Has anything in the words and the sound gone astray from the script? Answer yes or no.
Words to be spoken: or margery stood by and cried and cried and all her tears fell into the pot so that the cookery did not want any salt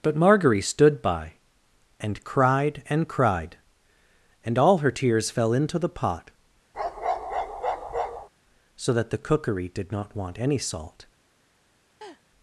yes